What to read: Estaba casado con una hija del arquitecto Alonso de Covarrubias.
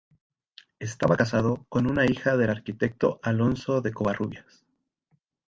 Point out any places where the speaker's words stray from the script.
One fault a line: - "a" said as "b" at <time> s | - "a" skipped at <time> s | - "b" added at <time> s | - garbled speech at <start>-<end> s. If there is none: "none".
none